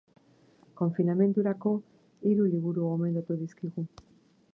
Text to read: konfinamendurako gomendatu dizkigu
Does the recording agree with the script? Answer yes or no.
no